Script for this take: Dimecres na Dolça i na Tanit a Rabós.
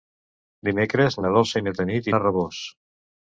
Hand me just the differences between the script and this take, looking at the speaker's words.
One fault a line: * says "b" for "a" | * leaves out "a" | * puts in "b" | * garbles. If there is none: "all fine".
all fine